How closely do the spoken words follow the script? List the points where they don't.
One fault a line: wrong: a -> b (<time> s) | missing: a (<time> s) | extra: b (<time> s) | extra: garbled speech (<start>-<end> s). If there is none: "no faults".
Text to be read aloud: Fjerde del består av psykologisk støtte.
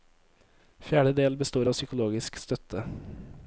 no faults